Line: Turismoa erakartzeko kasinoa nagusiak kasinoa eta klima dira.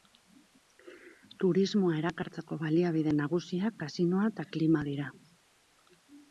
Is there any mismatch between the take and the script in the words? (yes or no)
yes